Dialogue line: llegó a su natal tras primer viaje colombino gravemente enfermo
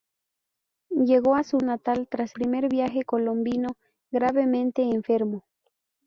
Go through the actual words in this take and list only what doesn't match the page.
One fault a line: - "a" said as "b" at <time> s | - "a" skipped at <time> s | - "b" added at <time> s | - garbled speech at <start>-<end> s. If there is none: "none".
none